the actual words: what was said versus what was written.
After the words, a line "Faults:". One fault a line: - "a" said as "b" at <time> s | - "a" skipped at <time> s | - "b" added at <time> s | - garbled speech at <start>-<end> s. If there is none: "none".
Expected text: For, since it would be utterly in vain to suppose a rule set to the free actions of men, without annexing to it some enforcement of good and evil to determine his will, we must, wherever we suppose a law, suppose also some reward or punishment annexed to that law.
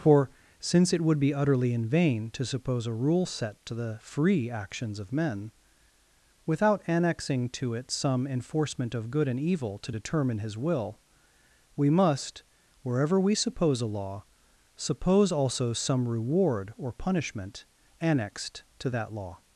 For, since it would be utterly in vain to suppose a rule set to the free actions of men, without annexing to it some enforcement of good and evil to determine his will, we must, wherever we suppose a law, suppose also some reward or punishment annexed to that law.
Faults:
none